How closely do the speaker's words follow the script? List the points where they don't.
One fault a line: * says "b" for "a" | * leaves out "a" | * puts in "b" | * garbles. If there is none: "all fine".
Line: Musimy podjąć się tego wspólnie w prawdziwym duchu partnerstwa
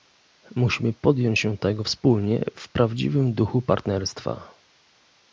all fine